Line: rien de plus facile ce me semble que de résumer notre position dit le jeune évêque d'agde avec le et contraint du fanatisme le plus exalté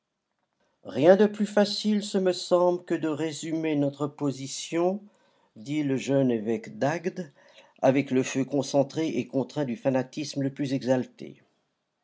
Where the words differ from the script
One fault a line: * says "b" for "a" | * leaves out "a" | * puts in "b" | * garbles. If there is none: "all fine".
* puts in "feu concentré"